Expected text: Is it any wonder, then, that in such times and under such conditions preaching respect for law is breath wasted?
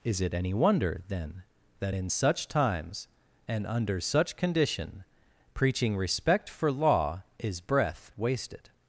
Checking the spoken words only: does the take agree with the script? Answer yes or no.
no